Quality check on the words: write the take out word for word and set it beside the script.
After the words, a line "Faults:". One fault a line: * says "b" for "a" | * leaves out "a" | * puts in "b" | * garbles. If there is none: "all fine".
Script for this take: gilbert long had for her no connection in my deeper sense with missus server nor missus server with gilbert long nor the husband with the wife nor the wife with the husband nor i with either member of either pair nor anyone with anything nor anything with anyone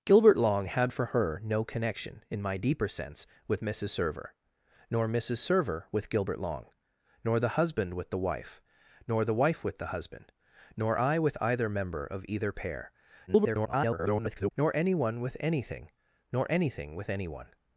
gilbert long had for her no connection in my deeper sense with missus server nor missus server with gilbert long nor the husband with the wife nor the wife with the husband nor i with either member of either pair [garbled] nor anyone with anything nor anything with anyone
Faults:
* garbles